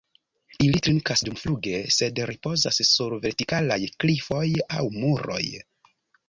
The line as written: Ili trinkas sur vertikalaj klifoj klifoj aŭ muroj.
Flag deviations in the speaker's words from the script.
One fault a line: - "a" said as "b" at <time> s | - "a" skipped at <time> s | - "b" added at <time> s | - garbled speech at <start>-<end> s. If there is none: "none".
- "dumfluge sed ripozas" added at 1.3 s
- "klifoj" skipped at 4.5 s